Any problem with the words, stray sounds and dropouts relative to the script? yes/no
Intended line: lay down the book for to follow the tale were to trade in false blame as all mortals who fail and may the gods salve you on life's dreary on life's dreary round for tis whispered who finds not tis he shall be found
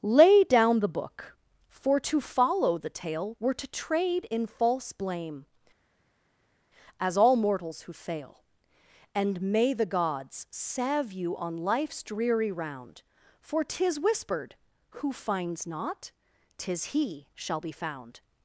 yes